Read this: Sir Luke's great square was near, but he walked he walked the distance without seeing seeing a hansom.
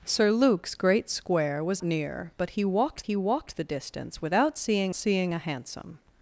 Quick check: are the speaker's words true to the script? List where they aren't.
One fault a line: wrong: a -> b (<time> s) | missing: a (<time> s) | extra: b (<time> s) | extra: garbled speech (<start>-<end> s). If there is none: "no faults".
no faults